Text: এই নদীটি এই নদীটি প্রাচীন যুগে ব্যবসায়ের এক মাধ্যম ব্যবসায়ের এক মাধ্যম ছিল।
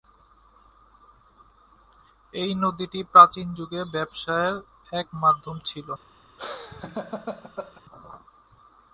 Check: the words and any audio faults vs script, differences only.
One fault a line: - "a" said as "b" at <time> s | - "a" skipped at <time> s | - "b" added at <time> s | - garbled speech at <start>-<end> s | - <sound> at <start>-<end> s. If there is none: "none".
- "এই নদীটি" skipped at 3.0 s
- "ব্যবসায়ের এক মাধ্যম" skipped at 5.6 s
- laugh at 6.4-7.8 s